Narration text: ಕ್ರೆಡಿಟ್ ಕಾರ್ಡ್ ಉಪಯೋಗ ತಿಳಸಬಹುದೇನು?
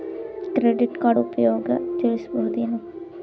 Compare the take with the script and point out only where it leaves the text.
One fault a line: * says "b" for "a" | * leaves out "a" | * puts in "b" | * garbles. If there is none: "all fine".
all fine